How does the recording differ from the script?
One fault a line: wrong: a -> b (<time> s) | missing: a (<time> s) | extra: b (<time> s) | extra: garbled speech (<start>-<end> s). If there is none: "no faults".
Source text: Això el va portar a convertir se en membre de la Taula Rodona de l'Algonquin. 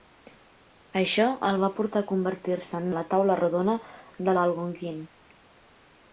missing: membre (2.9 s)